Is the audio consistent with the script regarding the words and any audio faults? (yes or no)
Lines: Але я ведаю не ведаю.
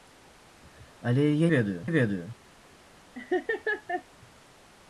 no